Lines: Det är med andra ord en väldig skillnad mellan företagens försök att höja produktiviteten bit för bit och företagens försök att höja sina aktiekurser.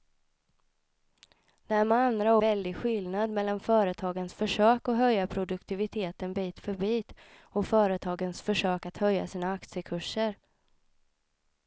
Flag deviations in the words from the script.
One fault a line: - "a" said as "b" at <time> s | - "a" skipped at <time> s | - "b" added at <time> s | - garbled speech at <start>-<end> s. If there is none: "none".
- "ord en" skipped at 2.4 s